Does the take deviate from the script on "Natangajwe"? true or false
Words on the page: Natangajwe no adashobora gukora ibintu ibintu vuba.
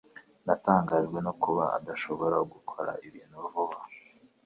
false